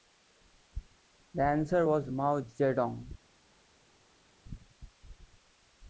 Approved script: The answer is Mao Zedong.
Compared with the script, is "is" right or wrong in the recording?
wrong